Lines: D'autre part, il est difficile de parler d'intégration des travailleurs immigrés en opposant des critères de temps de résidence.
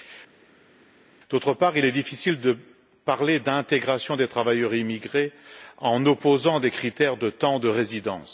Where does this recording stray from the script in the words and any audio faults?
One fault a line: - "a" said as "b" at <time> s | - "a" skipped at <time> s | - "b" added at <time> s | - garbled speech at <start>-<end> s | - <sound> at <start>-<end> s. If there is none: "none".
none